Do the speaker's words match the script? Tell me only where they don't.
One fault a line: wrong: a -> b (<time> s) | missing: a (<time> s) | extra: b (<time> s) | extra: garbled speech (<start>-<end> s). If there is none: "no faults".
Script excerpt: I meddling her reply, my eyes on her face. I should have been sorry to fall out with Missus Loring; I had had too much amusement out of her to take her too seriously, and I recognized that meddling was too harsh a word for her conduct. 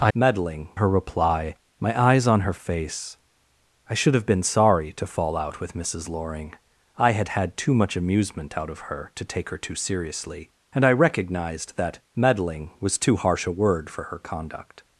no faults